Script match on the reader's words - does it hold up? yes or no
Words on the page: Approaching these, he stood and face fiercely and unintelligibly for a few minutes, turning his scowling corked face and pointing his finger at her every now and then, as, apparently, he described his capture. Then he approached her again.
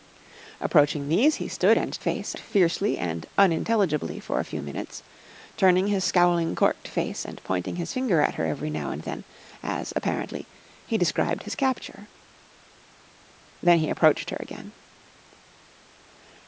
yes